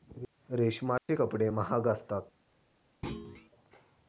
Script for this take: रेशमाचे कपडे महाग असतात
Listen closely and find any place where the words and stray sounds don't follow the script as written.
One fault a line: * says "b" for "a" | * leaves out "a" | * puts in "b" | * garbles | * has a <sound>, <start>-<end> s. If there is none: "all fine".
* has a dropout, 1.0-1.1 s
* has a thud, 3.0-3.5 s